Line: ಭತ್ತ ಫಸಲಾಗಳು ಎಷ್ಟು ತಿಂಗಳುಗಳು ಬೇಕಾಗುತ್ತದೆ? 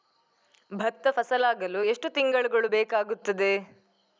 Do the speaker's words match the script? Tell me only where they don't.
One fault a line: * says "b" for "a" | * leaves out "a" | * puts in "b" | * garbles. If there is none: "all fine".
all fine